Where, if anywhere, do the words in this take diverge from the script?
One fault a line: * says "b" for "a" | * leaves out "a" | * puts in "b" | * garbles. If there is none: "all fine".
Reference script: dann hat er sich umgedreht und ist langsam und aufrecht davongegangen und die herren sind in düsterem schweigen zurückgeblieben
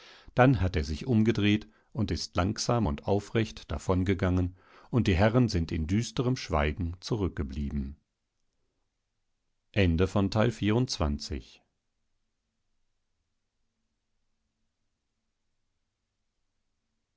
all fine